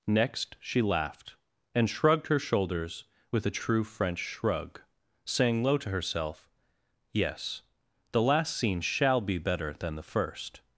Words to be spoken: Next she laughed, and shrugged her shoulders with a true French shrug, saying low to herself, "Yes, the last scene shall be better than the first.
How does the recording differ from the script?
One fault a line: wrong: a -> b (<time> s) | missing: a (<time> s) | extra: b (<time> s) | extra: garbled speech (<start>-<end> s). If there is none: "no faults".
no faults